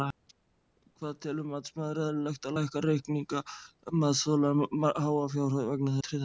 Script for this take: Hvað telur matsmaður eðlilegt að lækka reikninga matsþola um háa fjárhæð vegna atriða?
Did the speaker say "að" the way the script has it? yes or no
yes